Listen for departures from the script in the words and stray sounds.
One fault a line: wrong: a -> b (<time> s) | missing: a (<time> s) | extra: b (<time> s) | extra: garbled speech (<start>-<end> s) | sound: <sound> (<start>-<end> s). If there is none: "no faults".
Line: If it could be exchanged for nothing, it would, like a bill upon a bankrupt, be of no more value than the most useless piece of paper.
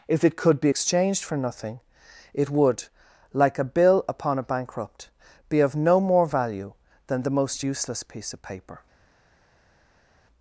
no faults